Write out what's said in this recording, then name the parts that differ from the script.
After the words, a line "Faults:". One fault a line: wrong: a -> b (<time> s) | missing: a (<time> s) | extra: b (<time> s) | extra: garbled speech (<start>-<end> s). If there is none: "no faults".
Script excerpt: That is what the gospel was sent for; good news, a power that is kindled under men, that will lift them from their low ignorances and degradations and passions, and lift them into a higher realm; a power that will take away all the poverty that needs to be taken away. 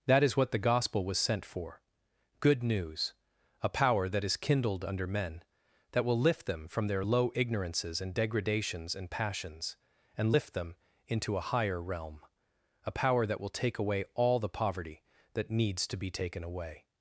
That is what the gospel was sent for; good news, a power that is kindled under men, that will lift them from their low ignorances and degradations and passions, and lift them into a higher realm; a power that will take away all the poverty that needs to be taken away.
Faults:
no faults